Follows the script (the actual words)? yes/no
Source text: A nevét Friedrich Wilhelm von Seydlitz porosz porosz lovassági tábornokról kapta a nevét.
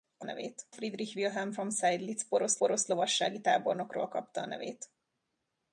yes